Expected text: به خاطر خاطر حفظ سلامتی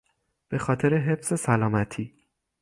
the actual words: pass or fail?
fail